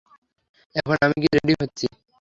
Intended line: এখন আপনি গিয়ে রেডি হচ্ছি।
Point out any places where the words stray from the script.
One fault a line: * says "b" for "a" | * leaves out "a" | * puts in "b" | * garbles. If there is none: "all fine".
* says "আমি" for "আপনি"